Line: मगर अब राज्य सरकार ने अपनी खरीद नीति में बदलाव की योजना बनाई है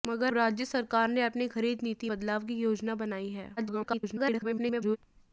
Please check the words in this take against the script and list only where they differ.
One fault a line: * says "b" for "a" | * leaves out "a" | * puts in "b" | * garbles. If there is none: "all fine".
* leaves out "अब"
* leaves out "में"
* garbles